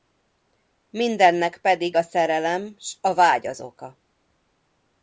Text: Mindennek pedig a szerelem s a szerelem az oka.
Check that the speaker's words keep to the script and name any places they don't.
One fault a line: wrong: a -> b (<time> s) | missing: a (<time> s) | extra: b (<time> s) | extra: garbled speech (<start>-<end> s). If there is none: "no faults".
wrong: szerelem -> vágy (3.1 s)